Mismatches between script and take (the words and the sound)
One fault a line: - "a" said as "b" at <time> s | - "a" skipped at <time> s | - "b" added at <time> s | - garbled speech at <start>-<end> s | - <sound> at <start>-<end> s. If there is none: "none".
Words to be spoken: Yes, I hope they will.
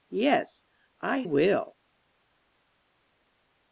- "hope they" skipped at 1.2 s